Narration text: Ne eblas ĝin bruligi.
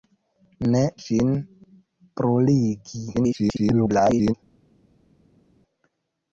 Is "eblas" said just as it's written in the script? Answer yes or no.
no